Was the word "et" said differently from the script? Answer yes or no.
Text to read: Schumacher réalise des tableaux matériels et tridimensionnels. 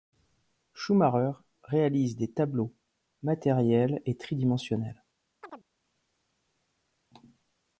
no